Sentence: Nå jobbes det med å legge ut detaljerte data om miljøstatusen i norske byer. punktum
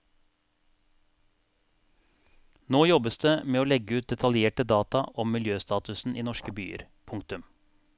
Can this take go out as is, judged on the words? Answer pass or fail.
pass